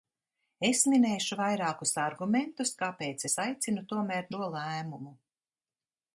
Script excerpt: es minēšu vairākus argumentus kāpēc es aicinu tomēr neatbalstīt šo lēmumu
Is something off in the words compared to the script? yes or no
yes